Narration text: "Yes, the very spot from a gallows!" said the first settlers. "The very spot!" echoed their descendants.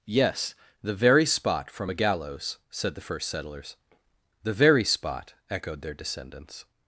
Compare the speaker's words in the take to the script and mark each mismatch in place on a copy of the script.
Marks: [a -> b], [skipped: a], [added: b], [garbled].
"Yes, the very spot from a gallows!" said the first settlers. "The very spot!" echoed their descendants.